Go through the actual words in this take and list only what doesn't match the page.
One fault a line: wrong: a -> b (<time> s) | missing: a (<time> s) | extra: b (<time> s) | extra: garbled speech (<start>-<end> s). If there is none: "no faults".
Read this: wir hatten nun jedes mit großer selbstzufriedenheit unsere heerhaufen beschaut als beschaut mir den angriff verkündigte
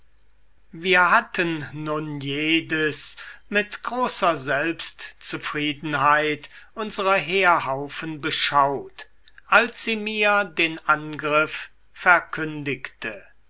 wrong: beschaut -> sie (9.8 s)